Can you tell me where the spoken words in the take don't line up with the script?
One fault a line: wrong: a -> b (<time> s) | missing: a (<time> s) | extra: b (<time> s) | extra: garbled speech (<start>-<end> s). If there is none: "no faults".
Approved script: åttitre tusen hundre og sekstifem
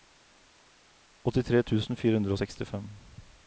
extra: fire (2.0 s)